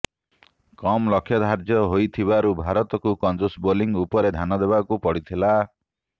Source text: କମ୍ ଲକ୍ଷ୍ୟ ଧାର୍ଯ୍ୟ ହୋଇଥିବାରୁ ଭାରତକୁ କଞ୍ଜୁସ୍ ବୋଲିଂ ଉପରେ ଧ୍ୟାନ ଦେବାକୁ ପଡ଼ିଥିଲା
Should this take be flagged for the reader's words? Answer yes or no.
no